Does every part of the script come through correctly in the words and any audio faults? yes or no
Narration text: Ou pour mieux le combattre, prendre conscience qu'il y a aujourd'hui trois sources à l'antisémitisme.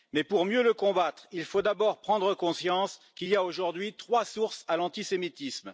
no